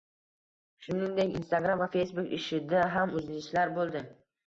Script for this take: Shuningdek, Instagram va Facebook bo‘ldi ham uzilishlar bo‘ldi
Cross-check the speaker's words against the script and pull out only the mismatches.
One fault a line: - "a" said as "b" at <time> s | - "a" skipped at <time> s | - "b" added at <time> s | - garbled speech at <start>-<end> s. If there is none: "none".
- "bo‘ldi" said as "ishida" at 2.4 s